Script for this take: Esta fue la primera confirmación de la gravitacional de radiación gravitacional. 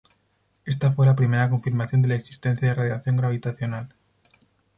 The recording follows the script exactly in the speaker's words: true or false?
false